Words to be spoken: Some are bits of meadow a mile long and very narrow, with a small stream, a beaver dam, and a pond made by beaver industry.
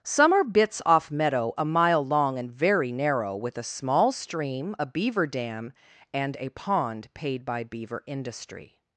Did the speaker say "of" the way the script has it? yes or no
no